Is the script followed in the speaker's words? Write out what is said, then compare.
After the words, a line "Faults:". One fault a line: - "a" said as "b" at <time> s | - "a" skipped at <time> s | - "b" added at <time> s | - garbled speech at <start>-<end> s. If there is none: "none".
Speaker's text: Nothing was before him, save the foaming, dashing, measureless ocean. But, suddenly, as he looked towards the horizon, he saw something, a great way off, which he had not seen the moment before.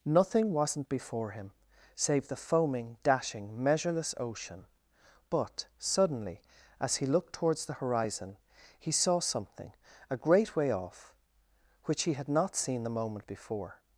Nothing wasn't before him, save the foaming, dashing, measureless ocean. But, suddenly, as he looked towards the horizon, he saw something, a great way off, which he had not seen the moment before.
Faults:
- "was" said as "wasn't" at 0.5 s